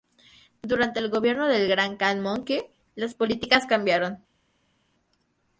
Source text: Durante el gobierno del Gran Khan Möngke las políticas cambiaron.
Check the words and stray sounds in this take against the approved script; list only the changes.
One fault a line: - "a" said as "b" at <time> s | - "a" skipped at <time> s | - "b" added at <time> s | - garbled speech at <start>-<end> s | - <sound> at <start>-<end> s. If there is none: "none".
none